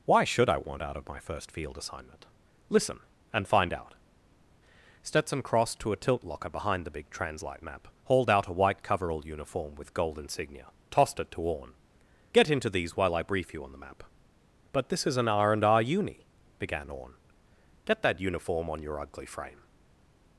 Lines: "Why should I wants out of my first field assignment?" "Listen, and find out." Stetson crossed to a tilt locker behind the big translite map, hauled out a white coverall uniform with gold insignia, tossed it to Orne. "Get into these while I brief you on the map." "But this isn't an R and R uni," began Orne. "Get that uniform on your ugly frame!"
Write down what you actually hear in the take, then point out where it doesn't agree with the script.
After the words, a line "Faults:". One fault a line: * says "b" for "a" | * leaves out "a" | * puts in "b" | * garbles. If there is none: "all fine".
"Why should I want out of my first field assignment?" "Listen, and find out." Stetson crossed to a tilt locker behind the big translite map, hauled out a white coverall uniform with gold insignia, tossed it to Orne. "Get into these while I brief you on the map." "But this is an R and R uni," began Orne. "Get that uniform on your ugly frame!"
Faults:
* says "want" for "wants"
* says "is" for "isn't"